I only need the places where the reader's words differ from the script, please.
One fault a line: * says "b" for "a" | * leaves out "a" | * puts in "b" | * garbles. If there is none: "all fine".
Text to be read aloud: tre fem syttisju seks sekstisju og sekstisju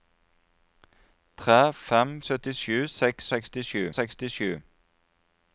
all fine